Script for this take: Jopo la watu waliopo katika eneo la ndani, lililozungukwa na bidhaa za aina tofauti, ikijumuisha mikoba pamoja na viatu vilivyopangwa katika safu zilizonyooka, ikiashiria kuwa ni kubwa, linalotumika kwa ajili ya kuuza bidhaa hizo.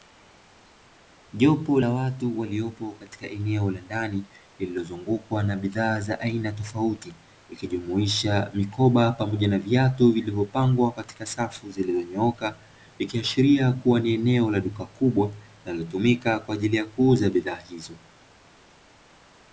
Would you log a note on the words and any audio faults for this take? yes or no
yes